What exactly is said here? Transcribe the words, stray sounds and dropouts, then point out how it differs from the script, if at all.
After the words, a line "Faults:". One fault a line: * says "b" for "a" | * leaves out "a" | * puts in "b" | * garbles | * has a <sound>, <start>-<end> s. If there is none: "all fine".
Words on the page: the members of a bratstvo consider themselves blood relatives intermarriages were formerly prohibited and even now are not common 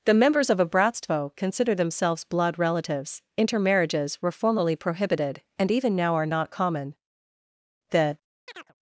the members of a bratstvo consider themselves blood relatives intermarriages were formerly prohibited and even now are not common the
Faults:
* puts in "the"
* has a chirp, 8.5-8.7 s